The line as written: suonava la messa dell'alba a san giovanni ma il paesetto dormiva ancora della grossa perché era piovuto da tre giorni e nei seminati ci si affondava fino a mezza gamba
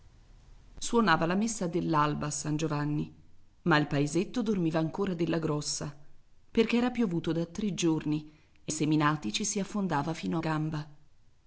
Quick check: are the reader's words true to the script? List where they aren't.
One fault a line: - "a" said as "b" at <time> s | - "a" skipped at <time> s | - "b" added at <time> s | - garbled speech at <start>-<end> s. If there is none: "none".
- "nei" skipped at 8.7 s
- "mezza" skipped at 10.4 s